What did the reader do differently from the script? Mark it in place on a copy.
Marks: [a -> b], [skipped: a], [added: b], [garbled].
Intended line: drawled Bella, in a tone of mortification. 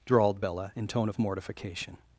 drawled Bella, in [skipped: a] tone of mortification.